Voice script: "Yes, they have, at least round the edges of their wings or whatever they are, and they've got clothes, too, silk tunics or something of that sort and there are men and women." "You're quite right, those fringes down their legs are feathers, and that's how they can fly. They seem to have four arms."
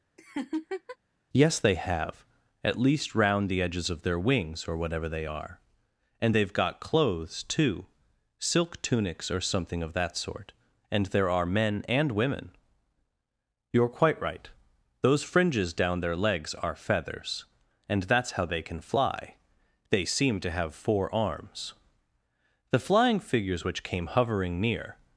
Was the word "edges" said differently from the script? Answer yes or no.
no